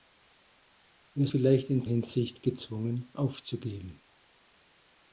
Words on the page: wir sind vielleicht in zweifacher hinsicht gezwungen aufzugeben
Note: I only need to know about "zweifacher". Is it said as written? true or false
false